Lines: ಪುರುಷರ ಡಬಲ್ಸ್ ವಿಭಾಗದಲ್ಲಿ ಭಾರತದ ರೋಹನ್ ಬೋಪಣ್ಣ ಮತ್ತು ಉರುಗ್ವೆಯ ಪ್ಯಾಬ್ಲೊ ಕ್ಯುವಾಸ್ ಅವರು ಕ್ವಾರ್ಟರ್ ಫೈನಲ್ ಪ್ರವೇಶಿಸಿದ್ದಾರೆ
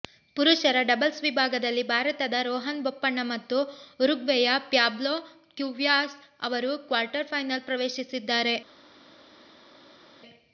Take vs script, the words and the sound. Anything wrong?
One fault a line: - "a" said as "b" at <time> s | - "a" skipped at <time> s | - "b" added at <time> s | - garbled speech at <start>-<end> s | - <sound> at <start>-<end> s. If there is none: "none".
none